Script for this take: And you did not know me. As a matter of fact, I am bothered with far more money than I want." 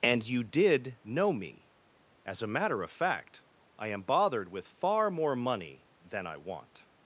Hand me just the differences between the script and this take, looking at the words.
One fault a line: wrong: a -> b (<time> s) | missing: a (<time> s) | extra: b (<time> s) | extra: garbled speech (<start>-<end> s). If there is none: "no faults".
missing: not (1.0 s)